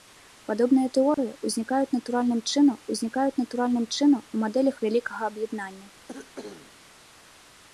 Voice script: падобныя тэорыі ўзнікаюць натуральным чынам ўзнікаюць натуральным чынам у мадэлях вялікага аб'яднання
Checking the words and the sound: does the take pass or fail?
fail